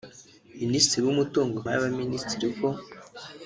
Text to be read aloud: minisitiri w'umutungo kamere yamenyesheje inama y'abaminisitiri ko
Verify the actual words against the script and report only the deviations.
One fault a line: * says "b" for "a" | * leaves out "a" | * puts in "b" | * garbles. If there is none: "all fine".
* leaves out "kamere yamenyesheje inama"